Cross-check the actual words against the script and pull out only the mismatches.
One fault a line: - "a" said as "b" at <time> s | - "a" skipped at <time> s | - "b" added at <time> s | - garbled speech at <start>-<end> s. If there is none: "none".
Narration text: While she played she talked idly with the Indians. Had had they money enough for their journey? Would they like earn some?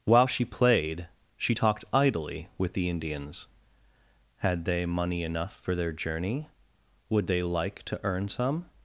- "had" skipped at 4.6 s
- "to" added at 7.9 s